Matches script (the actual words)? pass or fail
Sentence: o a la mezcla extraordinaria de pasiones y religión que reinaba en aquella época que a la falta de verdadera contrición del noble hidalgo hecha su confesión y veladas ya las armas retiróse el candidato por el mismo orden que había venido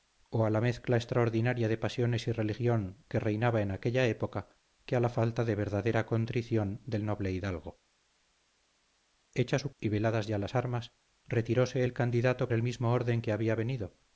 fail